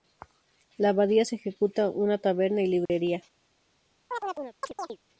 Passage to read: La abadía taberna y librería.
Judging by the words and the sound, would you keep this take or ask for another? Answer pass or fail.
fail